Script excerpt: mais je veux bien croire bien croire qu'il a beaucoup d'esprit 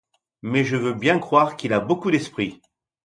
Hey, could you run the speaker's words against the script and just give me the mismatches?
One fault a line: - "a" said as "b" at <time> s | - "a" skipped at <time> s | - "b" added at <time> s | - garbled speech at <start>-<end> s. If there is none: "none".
- "bien croire" skipped at 1.6 s